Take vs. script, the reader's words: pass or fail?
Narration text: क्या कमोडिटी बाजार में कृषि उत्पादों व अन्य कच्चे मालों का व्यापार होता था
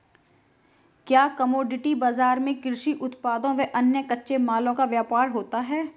fail